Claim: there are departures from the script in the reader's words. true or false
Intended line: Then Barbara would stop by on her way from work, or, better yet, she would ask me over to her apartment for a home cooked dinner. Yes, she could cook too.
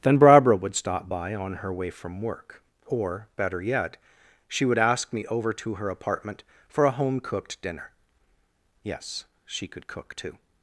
false